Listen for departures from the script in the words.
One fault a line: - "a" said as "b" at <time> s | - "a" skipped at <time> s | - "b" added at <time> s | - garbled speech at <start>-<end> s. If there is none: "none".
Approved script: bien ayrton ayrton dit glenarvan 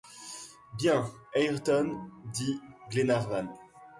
- "ayrton" skipped at 2.1 s